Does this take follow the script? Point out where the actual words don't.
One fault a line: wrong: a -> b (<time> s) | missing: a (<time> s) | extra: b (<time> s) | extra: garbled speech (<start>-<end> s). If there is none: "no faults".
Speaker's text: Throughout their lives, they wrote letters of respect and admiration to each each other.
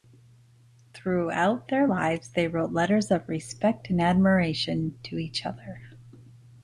missing: each (5.5 s)